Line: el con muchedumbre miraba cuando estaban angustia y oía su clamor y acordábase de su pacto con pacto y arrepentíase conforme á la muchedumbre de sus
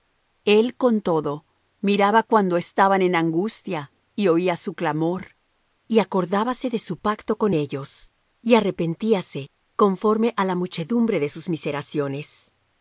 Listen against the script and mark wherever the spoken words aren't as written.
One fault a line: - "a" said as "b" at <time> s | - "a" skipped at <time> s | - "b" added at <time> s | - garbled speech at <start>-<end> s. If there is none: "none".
- "muchedumbre" said as "todo" at 1.0 s
- "en" added at 3.0 s
- "pacto" said as "ellos" at 7.5 s